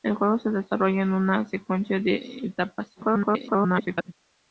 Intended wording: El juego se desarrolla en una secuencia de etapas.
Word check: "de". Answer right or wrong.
right